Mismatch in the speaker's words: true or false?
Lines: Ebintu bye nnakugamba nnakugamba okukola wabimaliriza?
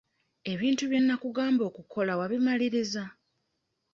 true